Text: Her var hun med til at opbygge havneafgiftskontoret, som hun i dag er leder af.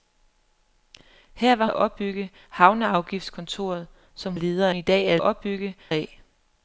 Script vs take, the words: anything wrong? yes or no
yes